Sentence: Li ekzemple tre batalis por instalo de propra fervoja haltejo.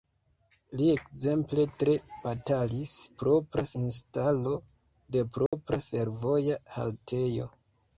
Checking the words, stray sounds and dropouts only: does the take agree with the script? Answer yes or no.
no